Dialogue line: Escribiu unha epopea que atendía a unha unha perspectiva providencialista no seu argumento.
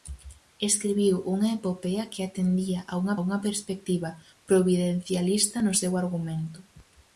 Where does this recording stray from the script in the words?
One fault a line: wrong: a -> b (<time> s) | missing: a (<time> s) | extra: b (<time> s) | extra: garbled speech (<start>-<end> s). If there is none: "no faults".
no faults